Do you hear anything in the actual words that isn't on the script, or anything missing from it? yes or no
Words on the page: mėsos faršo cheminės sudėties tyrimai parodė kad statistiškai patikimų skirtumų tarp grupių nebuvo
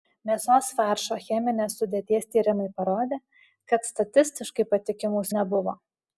yes